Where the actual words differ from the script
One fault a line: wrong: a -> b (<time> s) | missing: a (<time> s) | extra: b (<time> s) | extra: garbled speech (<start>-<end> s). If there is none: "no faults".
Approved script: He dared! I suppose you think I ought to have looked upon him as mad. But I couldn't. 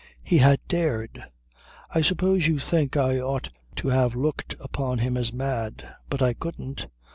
extra: had (0.4 s)